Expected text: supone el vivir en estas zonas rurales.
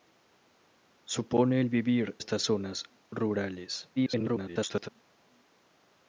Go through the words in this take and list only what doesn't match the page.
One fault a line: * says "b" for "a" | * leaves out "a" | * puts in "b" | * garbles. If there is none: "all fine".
* leaves out "en"
* garbles